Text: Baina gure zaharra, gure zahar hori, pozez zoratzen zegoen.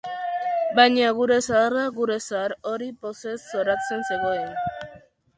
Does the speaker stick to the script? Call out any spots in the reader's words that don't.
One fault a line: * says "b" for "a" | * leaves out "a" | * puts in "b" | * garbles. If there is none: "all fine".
all fine